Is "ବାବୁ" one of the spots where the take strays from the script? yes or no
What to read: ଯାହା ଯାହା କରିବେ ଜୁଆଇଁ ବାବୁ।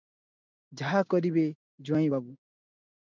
no